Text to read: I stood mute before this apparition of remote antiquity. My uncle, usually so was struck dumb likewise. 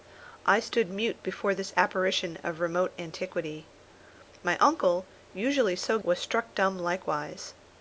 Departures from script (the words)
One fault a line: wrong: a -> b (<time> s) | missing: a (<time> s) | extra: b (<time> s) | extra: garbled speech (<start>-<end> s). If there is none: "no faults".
no faults